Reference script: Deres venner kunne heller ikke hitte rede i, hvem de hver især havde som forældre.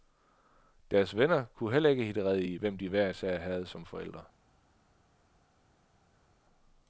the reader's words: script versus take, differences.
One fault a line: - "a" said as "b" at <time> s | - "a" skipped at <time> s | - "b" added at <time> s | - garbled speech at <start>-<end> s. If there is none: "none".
none